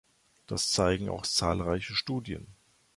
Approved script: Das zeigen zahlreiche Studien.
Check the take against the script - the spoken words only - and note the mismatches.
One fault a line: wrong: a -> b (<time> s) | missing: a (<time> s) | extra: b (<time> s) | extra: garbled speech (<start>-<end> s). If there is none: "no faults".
extra: auch (1.1 s)